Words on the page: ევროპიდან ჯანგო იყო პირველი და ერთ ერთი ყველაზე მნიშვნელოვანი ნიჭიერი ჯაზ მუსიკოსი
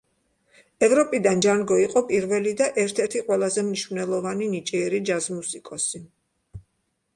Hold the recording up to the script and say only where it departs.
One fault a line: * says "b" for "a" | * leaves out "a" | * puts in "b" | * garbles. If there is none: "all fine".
all fine